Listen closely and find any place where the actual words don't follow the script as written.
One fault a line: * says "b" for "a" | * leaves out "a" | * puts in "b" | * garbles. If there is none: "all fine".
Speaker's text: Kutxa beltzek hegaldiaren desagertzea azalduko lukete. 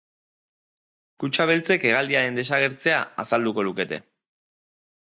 all fine